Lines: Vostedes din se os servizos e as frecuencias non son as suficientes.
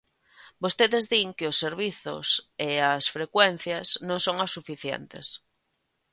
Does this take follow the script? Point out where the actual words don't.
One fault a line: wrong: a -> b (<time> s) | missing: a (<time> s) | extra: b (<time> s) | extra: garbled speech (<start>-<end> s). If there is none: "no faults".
wrong: se -> que (1.4 s)